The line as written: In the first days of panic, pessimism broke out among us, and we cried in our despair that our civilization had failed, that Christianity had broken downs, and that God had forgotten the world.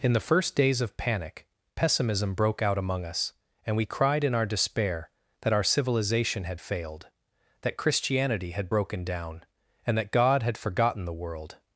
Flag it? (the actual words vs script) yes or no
yes